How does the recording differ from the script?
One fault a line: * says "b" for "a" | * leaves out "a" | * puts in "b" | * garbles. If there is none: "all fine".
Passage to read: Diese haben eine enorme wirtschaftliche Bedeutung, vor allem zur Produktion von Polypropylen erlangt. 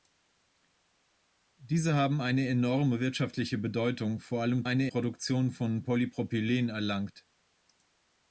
* says "eine" for "zur"